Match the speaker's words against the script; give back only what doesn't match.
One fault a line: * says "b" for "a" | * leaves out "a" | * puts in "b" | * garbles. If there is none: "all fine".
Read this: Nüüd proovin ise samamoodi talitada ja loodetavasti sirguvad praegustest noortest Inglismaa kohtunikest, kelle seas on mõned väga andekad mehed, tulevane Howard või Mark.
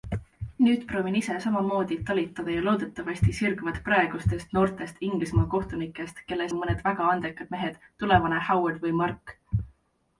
* leaves out "seas"